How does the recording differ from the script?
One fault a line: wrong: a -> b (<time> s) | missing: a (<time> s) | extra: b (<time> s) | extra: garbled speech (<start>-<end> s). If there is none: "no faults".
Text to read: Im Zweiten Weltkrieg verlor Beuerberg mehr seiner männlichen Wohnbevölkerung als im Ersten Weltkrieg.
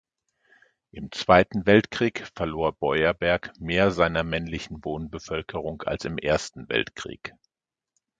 no faults